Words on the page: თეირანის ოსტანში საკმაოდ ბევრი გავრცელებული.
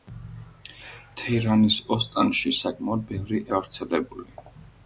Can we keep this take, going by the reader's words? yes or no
yes